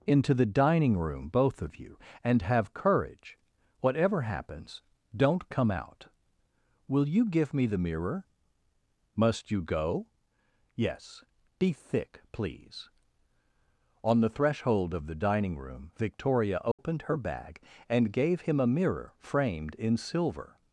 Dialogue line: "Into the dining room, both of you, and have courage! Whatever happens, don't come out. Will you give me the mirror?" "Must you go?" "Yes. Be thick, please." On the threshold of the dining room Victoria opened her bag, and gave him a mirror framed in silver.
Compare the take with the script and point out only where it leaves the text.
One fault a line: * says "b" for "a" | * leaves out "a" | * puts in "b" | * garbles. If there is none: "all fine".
all fine